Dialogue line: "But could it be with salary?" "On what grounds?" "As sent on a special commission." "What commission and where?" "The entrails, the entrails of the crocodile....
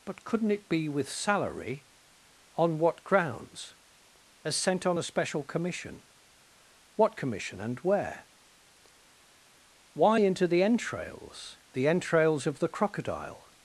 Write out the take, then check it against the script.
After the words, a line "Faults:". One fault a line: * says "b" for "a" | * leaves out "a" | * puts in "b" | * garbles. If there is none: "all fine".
"But couldn't it be with salary?" "On what grounds?" "As sent on a special commission." "What commission and where?" "Why, into the entrails, the entrails of the crocodile....
Faults:
* says "couldn't" for "could"
* puts in "Why into"